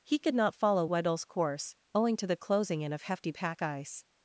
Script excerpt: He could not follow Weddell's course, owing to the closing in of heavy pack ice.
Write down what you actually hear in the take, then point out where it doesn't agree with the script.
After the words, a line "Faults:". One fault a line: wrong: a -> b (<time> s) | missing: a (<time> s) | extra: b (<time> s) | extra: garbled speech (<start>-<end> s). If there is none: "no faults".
He could not follow Weddell's course, owing to the closing in of hefty pack ice.
Faults:
wrong: heavy -> hefty (3.0 s)